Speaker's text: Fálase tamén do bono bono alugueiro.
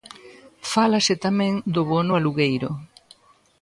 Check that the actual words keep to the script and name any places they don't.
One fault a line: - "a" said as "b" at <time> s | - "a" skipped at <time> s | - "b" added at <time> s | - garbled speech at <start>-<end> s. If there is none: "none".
- "bono" skipped at 2.1 s